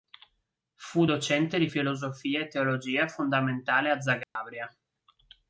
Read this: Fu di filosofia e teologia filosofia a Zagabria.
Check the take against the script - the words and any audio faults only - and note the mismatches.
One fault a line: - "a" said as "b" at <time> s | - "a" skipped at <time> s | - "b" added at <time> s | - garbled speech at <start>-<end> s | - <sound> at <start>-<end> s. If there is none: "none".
- "docente" added at 1.0 s
- "filosofia" said as "fondamentale" at 3.1 s
- dropout at 4.2-4.4 s